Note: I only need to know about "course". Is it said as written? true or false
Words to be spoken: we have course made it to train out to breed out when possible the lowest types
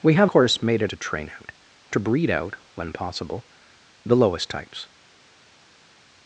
true